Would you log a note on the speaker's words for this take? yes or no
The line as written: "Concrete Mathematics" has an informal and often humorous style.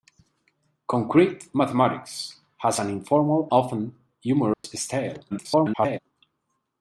yes